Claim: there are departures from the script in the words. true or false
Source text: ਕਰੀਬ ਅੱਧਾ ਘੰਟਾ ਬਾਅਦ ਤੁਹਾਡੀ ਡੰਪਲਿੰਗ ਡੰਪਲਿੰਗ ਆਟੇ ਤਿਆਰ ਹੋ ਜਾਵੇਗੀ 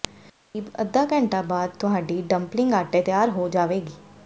true